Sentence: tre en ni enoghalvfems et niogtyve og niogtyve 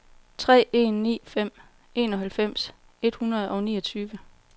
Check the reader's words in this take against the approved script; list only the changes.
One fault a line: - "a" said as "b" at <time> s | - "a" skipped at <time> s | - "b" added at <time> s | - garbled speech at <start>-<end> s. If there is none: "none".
- "fem" added at 1.2 s
- "niogtyve" said as "hundrede" at 3.1 s